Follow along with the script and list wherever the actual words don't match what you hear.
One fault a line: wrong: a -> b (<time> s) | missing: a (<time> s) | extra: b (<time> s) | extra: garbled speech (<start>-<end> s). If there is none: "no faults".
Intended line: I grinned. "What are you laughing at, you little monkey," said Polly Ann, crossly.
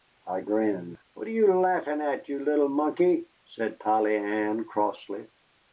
no faults